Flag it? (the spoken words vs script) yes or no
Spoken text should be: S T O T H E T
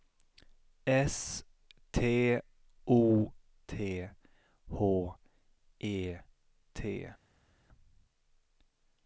no